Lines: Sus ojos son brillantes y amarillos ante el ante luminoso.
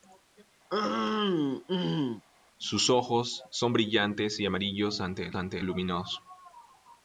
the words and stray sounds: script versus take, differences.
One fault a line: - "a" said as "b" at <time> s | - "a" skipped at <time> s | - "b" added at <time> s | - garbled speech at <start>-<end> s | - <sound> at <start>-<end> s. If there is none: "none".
- throat clearing at 0.7-2.2 s